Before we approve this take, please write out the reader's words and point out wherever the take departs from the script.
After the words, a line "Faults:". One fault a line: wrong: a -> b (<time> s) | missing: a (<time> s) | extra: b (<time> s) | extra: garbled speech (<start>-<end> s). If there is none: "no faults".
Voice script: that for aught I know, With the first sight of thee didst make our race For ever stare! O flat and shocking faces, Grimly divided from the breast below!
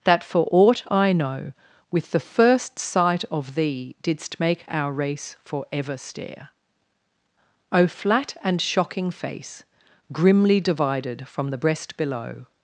that for aught I know, With the first sight of thee didst make our race For ever stare! O flat and shocking face, Grimly divided from the breast below!
Faults:
wrong: faces -> face (9.1 s)